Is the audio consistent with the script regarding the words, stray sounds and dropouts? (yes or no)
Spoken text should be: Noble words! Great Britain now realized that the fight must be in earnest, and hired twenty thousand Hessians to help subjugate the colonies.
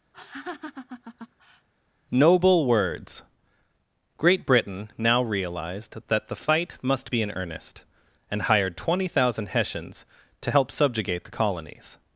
no